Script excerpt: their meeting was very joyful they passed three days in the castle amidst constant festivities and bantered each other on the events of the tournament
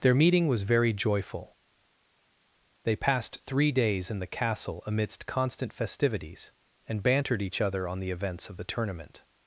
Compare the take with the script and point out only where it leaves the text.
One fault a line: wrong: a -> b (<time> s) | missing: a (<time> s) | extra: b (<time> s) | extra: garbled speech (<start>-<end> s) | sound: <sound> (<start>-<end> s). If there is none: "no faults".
no faults